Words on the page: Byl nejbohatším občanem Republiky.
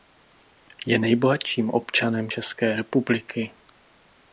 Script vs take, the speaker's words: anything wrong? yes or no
yes